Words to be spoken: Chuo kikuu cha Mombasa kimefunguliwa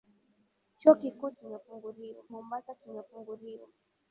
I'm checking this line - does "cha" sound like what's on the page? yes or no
no